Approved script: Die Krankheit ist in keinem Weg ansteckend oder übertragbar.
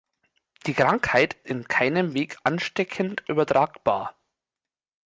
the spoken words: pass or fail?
fail